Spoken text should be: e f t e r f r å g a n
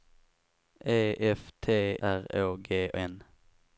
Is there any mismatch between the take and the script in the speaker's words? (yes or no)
yes